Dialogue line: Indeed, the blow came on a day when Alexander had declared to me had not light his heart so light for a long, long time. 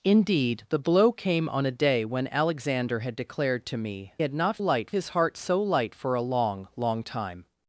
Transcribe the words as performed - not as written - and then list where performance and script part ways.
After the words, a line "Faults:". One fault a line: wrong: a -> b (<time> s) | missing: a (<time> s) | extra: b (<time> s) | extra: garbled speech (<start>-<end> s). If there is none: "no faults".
Indeed, the blow came on a day when Alexander had declared to me had not light his heart so light for a long, long time.
Faults:
no faults